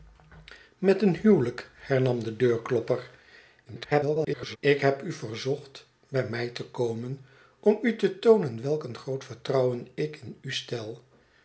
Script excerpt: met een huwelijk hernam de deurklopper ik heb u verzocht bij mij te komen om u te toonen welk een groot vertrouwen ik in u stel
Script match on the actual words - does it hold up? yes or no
no